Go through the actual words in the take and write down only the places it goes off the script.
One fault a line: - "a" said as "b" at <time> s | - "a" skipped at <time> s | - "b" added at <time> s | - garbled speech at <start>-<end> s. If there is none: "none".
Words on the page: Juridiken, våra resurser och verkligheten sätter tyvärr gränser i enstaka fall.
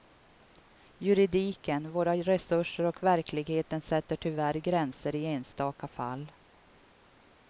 none